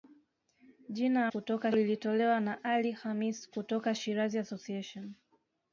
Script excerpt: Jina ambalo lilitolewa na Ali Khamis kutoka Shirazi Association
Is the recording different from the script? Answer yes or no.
yes